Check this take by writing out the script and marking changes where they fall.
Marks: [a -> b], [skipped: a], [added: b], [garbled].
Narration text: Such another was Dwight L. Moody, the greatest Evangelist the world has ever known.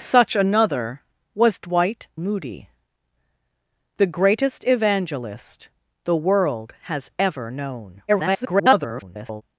Such another was Dwight [skipped: L.] Moody, the greatest Evangelist the world has ever known. [garbled]